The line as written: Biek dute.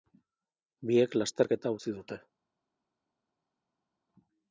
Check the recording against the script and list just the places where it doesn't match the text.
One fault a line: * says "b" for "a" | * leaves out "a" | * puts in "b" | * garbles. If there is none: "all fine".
* puts in "lasterketa utzi"